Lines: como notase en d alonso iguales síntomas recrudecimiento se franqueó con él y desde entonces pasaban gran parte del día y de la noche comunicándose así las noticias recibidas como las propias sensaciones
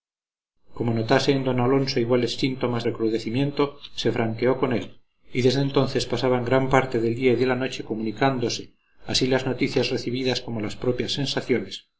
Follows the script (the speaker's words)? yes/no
yes